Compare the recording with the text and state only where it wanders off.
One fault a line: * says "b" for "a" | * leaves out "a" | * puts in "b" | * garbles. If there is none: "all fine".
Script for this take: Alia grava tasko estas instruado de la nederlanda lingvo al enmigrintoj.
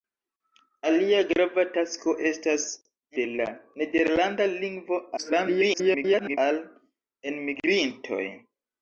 * leaves out "instruado"
* garbles